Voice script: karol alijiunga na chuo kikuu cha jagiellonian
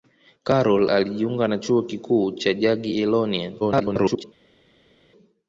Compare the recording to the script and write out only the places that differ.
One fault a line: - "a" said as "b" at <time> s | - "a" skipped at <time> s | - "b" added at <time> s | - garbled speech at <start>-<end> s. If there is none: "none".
- garbled speech at 3.6-4.2 s